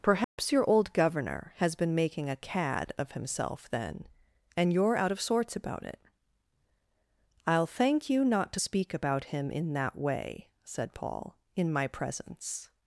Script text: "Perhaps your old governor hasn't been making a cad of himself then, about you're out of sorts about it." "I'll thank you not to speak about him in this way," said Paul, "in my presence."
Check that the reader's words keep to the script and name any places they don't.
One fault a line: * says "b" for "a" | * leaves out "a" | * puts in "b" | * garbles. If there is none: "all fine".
* says "has" for "hasn't"
* says "and" for "about"
* says "that" for "this"